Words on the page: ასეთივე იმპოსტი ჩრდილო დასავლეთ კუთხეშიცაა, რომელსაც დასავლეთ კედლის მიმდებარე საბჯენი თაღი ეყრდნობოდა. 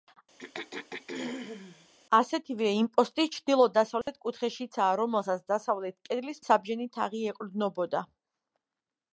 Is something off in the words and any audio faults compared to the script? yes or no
yes